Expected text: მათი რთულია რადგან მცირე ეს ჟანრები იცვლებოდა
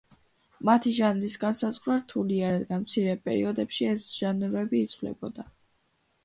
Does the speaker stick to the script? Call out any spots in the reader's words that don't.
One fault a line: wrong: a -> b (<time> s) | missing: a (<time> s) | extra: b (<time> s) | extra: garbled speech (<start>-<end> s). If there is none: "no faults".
extra: ჟანრის განსაზღვრა (1.0 s)
extra: პერიოდებში (3.3 s)